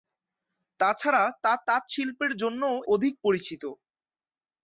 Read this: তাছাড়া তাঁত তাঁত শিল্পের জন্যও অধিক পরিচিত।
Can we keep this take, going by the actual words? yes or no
yes